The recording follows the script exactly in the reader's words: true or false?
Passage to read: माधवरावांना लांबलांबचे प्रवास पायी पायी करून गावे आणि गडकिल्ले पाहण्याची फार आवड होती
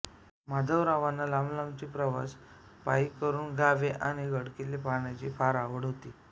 false